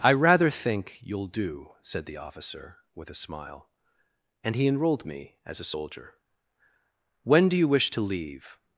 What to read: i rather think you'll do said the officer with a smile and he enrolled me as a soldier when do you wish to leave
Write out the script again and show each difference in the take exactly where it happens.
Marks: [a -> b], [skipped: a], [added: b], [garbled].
i rather think you'll do said the officer with a smile and he enrolled me as a soldier when do you wish to leave